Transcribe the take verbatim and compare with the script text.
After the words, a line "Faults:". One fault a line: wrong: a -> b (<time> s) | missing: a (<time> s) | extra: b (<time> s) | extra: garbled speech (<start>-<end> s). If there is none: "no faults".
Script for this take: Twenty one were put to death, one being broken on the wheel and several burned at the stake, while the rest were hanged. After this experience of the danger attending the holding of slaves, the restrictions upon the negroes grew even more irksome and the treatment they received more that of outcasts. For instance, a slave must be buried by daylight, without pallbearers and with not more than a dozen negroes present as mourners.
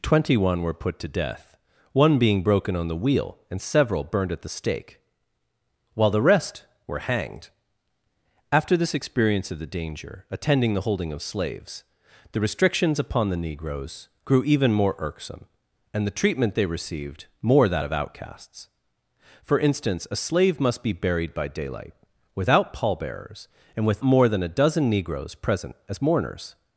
Twenty one were put to death, one being broken on the wheel and several burned at the stake, while the rest were hanged. After this experience of the danger attending the holding of slaves, the restrictions upon the negroes grew even more irksome and the treatment they received more that of outcasts. For instance, a slave must be buried by daylight, without pallbearers and with more than a dozen negroes present as mourners.
Faults:
missing: not (24.0 s)